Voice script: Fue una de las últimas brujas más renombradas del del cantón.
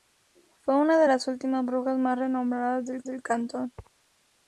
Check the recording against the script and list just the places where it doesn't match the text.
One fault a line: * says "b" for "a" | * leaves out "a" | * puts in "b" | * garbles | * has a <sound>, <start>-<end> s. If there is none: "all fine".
all fine